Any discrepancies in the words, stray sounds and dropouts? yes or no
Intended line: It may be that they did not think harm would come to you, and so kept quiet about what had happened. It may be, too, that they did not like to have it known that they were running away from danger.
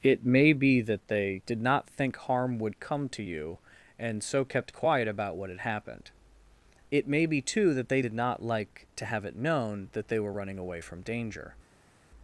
no